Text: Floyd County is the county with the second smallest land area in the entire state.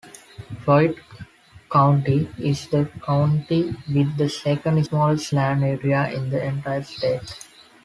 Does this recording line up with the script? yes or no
yes